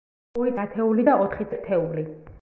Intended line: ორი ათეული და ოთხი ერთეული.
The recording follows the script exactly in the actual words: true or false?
true